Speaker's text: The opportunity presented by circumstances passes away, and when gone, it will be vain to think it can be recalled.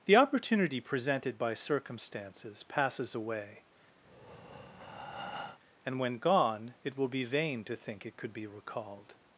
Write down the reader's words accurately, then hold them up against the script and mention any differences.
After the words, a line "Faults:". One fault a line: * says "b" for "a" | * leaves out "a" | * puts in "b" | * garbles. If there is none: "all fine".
The opportunity presented by circumstances passes away, and when gone, it will be vain to think it could be recalled.
Faults:
* says "could" for "can"